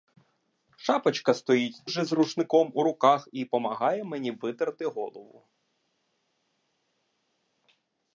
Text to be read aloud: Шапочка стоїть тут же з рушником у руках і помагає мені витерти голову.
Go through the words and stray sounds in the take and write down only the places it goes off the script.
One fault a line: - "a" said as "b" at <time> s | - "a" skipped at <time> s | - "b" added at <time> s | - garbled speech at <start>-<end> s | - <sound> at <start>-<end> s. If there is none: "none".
- "тут" skipped at 1.8 s